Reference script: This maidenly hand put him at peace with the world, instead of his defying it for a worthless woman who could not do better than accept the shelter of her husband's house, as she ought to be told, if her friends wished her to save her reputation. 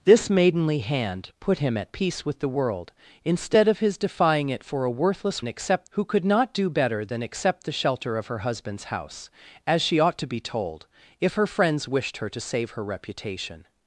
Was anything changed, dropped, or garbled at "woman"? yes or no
yes